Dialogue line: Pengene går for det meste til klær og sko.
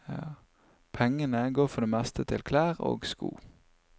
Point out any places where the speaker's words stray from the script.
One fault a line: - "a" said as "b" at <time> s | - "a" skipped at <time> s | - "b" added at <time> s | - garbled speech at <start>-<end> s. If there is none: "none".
none